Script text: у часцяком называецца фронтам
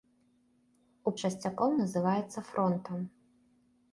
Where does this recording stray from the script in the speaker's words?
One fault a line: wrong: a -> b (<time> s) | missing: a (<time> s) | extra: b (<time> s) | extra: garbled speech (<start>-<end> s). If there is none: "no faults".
no faults